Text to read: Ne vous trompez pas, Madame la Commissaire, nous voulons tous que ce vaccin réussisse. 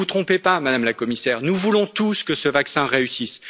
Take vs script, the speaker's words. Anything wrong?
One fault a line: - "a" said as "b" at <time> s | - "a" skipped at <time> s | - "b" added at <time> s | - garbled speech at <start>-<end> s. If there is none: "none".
none